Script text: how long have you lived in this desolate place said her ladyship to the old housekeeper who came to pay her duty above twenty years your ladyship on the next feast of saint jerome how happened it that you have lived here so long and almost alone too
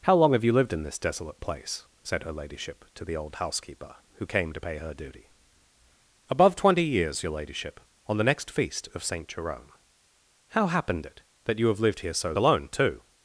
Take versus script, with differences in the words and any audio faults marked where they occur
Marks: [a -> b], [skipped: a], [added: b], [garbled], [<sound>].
how long have you lived in this desolate place said her ladyship to the old housekeeper who came to pay her duty above twenty years your ladyship on the next feast of saint jerome how happened it that you have lived here so [skipped: long and almost] alone too